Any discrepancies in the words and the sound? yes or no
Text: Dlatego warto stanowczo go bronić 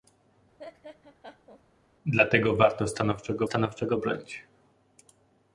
yes